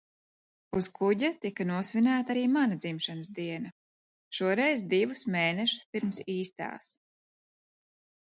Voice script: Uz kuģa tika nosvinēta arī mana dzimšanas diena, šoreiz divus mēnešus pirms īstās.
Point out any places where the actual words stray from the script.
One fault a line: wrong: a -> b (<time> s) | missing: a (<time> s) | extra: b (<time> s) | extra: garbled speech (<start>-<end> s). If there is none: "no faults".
no faults